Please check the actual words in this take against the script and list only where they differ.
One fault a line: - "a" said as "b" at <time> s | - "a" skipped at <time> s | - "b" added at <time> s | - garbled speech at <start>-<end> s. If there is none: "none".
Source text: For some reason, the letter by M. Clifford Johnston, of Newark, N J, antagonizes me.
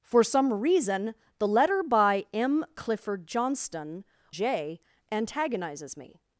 - "of Newark N" skipped at 4.0 s